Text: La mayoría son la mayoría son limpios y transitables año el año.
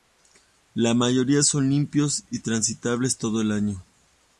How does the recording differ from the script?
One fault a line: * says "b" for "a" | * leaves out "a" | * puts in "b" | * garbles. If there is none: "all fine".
* leaves out "la mayoría son"
* says "todo" for "año"